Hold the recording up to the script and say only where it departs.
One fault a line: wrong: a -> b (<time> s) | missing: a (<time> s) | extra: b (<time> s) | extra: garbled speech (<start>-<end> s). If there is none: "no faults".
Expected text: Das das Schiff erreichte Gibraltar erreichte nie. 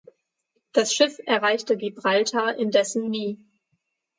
missing: das (0.9 s)
wrong: erreichte -> indessen (2.5 s)